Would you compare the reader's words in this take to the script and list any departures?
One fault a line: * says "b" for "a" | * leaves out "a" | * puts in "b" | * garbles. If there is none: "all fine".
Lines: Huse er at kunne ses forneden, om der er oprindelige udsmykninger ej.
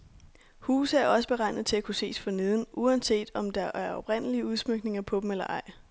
* puts in "også beregnet til"
* puts in "uanset"
* puts in "på dem eller"